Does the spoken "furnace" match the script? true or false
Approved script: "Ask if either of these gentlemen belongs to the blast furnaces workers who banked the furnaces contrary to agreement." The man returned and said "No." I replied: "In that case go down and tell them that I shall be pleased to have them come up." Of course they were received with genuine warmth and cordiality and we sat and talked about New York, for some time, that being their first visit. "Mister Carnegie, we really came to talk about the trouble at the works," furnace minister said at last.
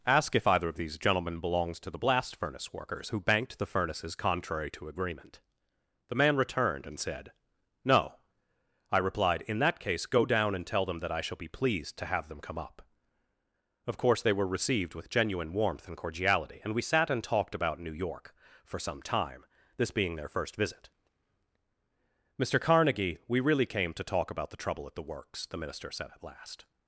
false